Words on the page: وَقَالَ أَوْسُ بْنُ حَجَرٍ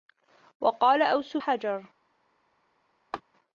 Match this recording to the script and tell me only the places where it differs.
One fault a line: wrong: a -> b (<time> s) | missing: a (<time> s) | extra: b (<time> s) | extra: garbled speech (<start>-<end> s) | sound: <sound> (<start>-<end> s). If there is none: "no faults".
missing: بْنُ (1.4 s)
sound: laugh (3.1-3.2 s)